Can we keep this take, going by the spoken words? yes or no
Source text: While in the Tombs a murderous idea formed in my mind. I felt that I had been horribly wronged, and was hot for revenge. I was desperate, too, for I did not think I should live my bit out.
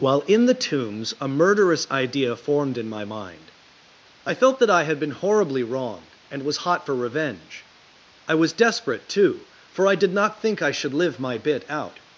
yes